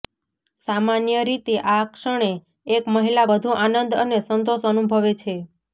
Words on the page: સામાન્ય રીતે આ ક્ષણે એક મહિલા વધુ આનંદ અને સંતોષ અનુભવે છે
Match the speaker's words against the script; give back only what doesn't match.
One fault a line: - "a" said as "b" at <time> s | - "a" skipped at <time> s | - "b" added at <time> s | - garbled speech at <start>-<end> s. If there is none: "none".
none